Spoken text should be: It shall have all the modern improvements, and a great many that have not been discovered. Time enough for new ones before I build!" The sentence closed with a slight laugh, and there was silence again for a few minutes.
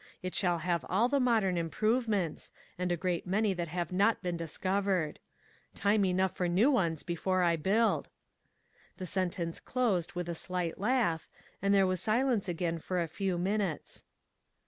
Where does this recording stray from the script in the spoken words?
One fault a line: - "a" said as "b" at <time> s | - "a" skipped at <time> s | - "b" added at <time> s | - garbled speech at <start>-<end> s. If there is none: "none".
none